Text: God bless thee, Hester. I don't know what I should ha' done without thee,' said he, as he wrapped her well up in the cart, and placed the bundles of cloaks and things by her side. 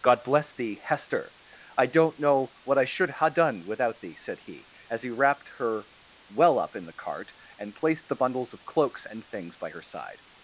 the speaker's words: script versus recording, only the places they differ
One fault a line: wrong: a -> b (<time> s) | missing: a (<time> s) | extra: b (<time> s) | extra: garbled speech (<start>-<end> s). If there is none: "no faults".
no faults